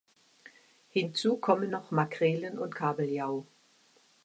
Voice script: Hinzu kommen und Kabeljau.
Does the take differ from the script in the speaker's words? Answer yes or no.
yes